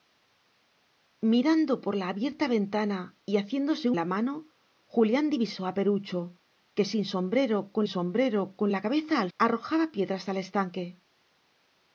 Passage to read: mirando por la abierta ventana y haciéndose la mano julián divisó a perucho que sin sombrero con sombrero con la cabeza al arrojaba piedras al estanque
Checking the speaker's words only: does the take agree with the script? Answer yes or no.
yes